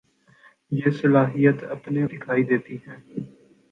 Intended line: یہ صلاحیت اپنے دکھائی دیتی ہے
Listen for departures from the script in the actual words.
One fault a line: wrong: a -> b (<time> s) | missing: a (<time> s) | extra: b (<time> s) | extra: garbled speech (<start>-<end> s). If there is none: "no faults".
no faults